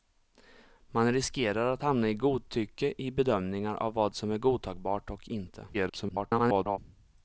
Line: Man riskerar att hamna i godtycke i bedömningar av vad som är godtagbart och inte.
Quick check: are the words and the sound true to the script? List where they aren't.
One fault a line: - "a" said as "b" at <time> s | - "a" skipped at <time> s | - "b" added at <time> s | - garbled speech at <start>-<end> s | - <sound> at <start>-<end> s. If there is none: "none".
- garbled speech at 5.7-6.8 s